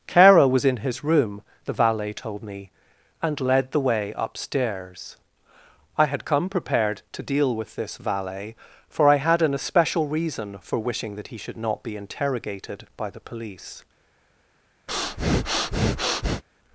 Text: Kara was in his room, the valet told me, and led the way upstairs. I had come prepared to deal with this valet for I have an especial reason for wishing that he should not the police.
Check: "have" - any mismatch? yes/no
yes